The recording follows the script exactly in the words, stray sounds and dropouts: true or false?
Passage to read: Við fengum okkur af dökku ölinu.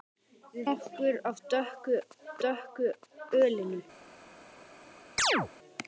false